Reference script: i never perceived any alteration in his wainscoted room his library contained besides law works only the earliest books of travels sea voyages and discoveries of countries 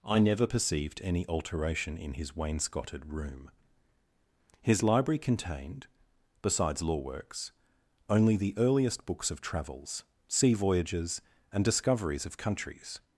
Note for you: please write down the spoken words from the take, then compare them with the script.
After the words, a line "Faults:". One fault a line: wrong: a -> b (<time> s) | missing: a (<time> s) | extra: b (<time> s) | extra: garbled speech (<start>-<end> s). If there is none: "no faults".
i never perceived any alteration in his wainscoted room his library contained besides law works only the earliest books of travels sea voyages and discoveries of countries
Faults:
no faults